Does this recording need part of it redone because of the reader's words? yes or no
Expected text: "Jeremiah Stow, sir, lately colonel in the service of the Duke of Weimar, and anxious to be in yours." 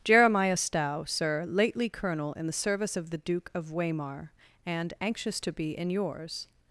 no